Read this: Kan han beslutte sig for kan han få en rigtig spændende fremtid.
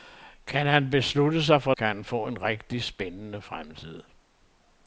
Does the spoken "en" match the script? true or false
true